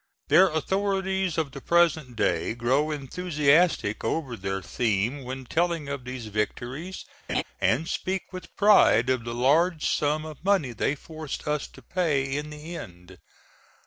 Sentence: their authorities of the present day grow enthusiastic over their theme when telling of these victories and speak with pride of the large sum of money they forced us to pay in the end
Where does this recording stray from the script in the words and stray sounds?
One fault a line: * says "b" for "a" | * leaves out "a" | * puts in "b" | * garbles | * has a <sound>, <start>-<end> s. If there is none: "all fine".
* has a laugh, 7.3-7.4 s